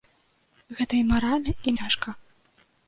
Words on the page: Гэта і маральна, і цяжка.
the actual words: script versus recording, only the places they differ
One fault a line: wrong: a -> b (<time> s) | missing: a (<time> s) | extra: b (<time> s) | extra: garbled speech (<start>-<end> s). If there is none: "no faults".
no faults